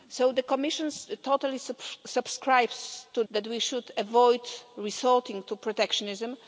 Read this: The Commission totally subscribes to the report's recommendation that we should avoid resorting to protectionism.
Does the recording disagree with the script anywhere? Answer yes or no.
yes